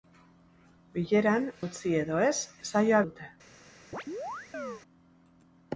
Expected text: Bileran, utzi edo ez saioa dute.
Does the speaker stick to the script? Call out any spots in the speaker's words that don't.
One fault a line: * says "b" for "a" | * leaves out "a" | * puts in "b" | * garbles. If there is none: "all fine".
all fine